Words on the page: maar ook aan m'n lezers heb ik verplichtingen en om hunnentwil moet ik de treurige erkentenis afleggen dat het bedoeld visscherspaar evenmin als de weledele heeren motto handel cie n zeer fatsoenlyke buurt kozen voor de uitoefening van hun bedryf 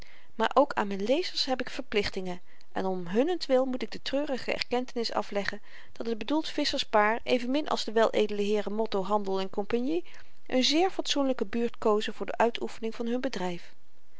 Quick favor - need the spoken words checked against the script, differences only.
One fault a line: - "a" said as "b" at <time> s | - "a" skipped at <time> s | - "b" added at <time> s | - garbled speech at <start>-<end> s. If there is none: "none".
none